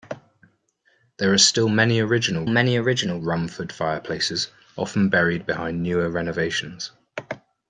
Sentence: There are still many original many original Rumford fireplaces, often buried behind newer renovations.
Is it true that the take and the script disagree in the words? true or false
false